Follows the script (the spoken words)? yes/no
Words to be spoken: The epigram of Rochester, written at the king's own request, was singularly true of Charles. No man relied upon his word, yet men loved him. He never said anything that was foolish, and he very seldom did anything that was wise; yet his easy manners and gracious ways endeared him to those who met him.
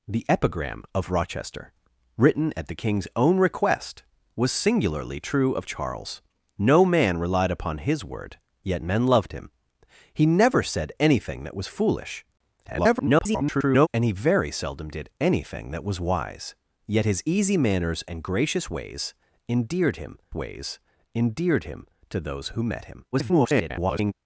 no